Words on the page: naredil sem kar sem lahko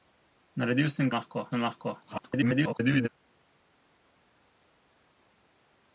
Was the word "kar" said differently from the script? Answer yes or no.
yes